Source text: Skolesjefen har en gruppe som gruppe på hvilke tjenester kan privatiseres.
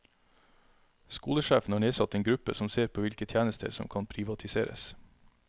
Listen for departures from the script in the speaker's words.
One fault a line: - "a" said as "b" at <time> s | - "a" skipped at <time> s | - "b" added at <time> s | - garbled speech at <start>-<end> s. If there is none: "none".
- "nedsatt" added at 1.8 s
- "gruppe" said as "ser" at 2.7 s
- "som" added at 3.7 s